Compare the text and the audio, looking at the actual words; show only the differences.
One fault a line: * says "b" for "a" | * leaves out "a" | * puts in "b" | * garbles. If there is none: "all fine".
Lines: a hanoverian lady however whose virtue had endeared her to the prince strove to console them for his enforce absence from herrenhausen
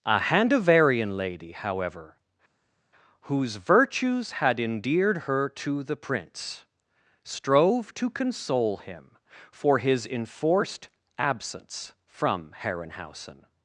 * says "virtues" for "virtue"
* says "him" for "them"
* says "enforced" for "enforce"